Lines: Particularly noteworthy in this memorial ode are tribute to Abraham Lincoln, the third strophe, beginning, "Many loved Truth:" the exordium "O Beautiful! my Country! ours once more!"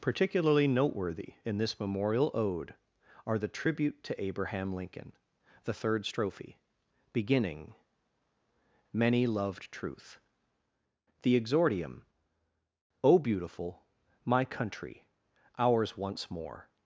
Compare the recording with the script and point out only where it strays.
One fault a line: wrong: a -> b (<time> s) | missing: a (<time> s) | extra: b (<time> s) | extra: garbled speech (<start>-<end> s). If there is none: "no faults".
extra: the (3.4 s)